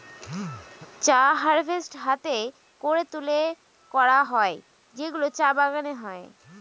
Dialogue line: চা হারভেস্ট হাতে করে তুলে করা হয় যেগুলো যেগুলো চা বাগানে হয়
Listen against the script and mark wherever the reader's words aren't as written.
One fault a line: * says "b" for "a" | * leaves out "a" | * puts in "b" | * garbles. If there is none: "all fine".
* leaves out "যেগুলো"